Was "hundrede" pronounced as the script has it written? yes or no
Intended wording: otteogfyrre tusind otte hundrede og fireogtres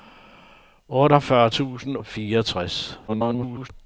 no